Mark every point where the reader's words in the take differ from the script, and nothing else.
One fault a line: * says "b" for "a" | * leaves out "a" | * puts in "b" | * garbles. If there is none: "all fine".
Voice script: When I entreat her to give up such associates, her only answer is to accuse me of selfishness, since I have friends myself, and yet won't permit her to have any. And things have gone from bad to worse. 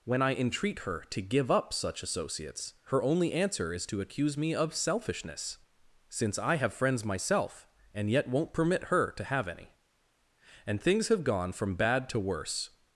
all fine